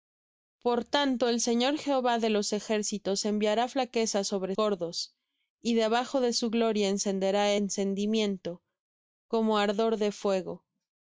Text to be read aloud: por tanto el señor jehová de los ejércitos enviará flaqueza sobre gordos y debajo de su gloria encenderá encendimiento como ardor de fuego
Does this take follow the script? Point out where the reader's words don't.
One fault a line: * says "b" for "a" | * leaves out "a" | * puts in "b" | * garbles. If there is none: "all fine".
all fine